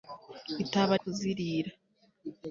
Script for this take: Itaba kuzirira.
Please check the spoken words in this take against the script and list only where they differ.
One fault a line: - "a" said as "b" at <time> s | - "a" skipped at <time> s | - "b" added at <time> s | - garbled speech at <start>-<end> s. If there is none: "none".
none